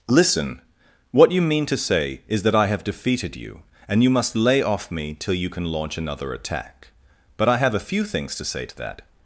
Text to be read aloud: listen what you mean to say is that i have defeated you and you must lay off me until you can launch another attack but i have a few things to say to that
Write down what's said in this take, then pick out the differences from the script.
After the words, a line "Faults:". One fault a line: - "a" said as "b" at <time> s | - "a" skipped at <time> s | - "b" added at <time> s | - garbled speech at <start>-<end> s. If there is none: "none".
listen what you mean to say is that i have defeated you and you must lay off me till you can launch another attack but i have a few things to say to that
Faults:
- "until" said as "till" at 5.1 s